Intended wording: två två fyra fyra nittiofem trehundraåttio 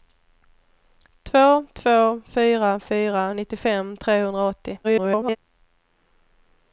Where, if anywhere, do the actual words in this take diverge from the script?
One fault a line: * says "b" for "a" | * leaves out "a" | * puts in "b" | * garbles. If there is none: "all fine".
* garbles